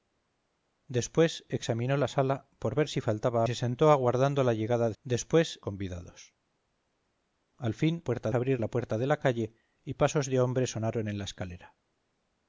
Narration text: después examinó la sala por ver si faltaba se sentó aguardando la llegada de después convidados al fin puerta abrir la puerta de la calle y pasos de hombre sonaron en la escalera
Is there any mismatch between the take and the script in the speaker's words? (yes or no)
no